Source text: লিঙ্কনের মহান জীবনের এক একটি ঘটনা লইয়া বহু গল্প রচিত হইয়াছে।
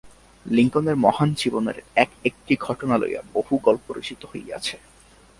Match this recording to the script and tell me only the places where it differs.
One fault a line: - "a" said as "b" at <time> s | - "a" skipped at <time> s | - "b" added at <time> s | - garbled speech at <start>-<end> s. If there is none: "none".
none